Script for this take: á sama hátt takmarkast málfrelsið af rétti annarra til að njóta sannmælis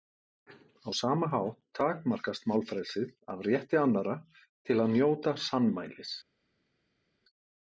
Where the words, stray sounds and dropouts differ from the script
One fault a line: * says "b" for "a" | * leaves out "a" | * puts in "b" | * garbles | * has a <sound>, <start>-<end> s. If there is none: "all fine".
all fine